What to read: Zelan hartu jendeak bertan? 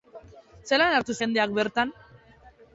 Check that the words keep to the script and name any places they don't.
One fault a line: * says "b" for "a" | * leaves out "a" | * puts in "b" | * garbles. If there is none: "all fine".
all fine